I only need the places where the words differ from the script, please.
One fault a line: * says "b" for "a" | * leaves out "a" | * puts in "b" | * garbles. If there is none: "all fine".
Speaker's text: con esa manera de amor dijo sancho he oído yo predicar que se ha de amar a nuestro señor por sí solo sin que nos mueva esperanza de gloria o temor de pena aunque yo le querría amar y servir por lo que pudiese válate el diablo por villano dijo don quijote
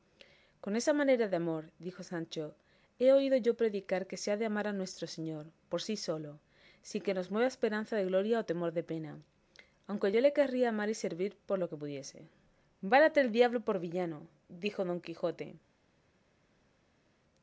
all fine